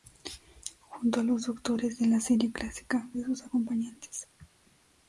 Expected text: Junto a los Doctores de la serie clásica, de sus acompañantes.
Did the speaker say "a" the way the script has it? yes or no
yes